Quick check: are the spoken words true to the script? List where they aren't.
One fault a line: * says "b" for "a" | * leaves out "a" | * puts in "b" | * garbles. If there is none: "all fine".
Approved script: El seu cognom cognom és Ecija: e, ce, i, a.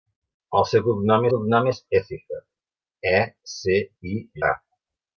all fine